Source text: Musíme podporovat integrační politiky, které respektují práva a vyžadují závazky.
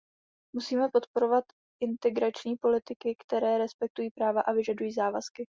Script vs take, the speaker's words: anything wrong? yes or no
no